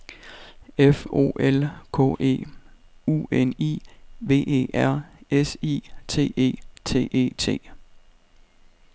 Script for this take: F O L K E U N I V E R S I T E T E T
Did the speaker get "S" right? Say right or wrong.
right